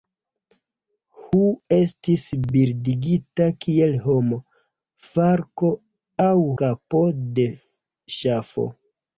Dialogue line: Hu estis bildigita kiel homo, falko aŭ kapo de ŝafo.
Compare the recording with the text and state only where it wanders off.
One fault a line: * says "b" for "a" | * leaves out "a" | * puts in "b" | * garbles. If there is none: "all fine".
all fine